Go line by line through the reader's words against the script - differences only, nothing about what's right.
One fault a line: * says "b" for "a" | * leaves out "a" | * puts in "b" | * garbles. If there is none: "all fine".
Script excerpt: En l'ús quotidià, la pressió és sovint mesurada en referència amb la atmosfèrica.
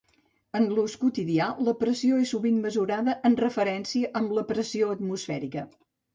* puts in "pressió"